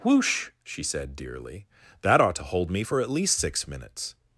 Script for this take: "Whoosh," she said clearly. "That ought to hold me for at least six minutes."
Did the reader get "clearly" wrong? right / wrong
wrong